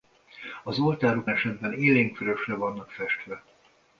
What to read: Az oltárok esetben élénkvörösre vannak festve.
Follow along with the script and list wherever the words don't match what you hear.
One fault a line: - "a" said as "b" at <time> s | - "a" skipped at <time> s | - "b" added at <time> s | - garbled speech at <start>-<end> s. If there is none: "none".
none